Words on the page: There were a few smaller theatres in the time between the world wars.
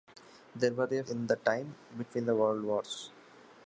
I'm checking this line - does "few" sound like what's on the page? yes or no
no